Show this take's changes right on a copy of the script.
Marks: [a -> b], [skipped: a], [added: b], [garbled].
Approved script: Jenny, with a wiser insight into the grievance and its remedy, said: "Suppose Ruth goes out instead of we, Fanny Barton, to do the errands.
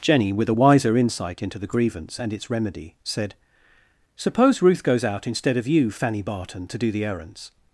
Jenny, with a wiser insight into the grievance and its remedy, said: "Suppose Ruth goes out instead of [we, -> you] Fanny Barton, to do the errands.